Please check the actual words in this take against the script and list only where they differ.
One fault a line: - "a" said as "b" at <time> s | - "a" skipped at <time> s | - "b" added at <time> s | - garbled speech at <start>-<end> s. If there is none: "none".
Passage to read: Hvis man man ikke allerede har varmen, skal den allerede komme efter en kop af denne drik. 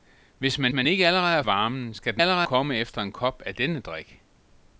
none